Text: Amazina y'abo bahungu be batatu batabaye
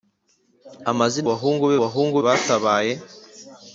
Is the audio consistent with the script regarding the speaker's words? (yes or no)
no